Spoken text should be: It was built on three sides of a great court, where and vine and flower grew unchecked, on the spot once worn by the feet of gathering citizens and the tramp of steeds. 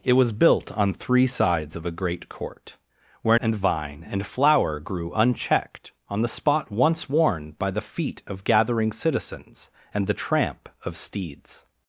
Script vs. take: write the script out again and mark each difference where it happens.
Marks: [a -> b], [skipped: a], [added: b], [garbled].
It was built on three sides of a great court, where and vine and flower grew unchecked, on the spot once worn by the feet of gathering citizens and the tramp of steeds.